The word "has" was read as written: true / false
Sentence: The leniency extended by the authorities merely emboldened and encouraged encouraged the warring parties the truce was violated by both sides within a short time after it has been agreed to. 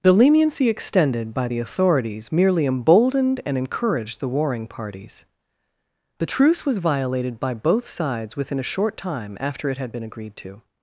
false